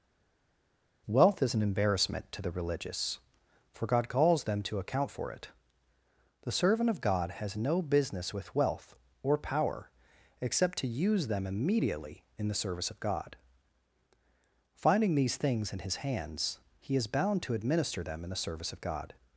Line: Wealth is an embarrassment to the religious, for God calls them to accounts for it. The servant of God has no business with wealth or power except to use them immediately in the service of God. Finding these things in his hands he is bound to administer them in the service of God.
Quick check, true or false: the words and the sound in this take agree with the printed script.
false